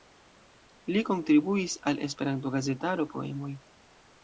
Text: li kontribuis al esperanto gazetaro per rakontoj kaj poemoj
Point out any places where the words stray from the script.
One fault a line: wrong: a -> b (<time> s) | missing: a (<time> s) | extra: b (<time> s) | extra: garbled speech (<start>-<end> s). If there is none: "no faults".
missing: per rakontoj kaj (3.1 s)